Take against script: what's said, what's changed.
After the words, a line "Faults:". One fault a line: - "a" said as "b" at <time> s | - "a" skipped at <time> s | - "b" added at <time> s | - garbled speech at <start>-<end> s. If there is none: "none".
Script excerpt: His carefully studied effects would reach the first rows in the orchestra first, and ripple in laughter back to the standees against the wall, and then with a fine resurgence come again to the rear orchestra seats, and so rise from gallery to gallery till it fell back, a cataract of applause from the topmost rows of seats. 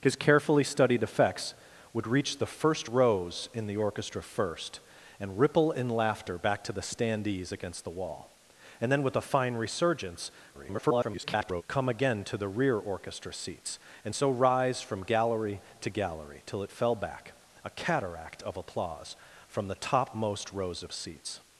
His carefully studied effects would reach the first rows in the orchestra first, and ripple in laughter back to the standees against the wall, and then with a fine resurgence [garbled] come again to the rear orchestra seats, and so rise from gallery to gallery till it fell back, a cataract of applause from the topmost rows of seats.
Faults:
- garbled speech at 10.5-11.6 s